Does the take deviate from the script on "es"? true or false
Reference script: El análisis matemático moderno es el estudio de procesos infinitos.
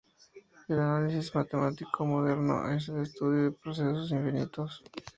false